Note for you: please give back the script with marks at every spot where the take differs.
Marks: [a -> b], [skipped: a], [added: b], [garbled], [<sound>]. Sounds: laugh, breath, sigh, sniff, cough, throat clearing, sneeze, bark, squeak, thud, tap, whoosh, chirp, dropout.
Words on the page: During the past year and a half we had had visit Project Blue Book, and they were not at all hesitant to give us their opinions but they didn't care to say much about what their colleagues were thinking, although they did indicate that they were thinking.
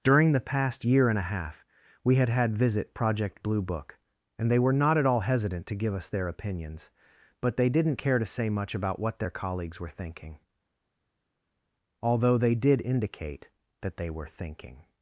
During the past year and a half we had had visit Project Blue Book, and they were not at all hesitant to give us their opinions but they didn't care to say much about what their colleagues were thinking, although they did indicate that they were thinking.